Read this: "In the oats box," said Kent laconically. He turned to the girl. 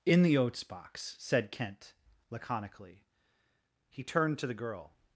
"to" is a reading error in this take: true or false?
false